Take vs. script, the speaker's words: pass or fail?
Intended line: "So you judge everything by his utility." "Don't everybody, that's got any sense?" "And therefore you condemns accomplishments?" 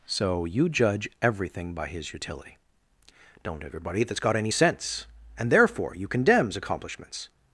pass